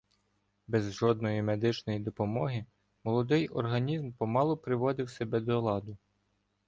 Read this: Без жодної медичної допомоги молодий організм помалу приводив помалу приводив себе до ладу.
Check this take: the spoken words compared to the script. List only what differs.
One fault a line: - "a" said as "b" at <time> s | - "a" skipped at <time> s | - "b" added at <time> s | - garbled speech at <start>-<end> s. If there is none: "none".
- "помалу приводив" skipped at 5.1 s